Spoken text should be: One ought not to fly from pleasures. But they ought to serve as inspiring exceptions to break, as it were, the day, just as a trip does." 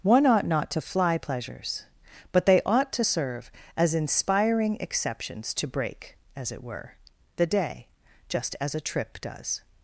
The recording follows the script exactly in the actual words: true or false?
false